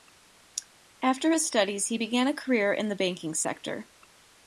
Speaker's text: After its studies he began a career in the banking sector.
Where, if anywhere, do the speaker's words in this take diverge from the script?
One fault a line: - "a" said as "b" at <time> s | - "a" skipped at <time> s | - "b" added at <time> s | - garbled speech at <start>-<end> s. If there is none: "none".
- "its" said as "his" at 1.3 s